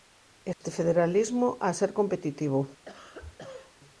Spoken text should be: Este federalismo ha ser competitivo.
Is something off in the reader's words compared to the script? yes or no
no